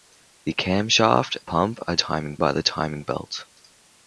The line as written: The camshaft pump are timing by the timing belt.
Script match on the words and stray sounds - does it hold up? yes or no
yes